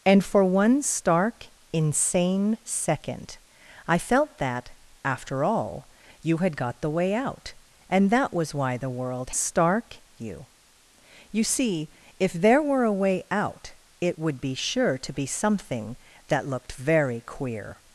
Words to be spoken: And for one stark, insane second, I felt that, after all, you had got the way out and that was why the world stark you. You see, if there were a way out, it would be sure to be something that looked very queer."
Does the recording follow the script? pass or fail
pass